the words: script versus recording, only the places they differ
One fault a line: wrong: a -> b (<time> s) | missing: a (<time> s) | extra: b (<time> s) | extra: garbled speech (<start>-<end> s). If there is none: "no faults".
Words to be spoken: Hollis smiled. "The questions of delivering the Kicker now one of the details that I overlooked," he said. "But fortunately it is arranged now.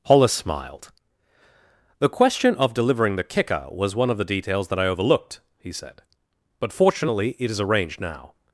wrong: questions -> question (2.1 s)
wrong: now -> was (3.7 s)